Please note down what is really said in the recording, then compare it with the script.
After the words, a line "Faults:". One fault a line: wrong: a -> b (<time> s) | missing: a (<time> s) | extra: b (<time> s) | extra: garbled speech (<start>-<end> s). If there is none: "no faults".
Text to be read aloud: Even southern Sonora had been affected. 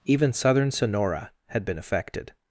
Even southern Sonora had been affected.
Faults:
no faults